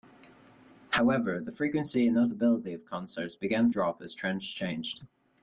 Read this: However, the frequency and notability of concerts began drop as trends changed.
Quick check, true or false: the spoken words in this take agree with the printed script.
true